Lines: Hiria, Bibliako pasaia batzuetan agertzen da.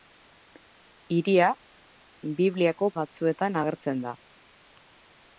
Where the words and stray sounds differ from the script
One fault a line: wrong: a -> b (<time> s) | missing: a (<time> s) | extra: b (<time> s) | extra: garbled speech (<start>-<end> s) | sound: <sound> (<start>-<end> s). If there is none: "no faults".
missing: pasaia (2.9 s)